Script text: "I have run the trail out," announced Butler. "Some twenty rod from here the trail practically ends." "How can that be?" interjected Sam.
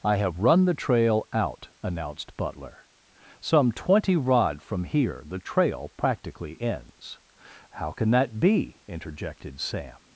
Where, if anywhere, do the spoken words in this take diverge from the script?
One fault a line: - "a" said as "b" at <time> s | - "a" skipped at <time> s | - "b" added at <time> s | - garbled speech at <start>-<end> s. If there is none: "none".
none